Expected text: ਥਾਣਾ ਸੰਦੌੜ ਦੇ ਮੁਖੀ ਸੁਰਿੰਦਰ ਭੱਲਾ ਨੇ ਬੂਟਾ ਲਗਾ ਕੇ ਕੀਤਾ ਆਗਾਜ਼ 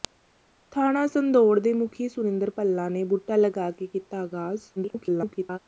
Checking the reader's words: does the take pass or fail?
fail